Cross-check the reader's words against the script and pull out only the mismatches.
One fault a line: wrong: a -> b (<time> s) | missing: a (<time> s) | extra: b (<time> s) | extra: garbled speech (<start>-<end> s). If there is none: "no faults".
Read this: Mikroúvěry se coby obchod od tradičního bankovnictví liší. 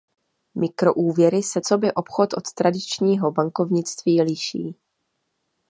no faults